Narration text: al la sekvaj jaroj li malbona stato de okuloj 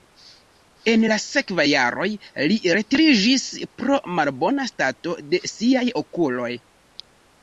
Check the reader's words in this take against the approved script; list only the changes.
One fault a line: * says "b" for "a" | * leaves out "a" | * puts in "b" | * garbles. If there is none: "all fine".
* says "en" for "al"
* puts in "retiriĝis pro"
* puts in "siaj"